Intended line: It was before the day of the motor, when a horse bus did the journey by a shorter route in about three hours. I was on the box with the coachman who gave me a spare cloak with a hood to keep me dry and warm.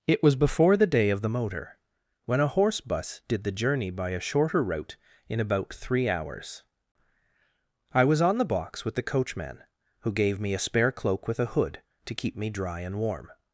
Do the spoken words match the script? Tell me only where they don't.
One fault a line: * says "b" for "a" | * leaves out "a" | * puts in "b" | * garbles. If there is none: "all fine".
all fine